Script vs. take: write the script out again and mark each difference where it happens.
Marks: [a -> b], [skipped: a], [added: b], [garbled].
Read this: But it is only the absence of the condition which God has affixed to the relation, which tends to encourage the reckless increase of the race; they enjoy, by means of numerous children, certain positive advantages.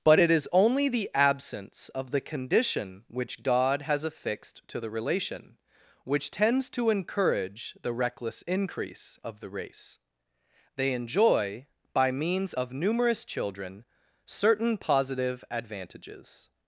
But it is only the absence of the condition which God has affixed to the relation, which tends to encourage the reckless increase of the race; they enjoy, by means of numerous children, certain positive advantages.